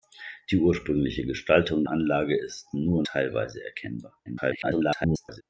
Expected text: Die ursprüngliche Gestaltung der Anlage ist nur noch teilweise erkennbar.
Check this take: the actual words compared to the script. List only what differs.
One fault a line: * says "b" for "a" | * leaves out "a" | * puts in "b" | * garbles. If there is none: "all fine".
* leaves out "der"
* leaves out "noch"
* garbles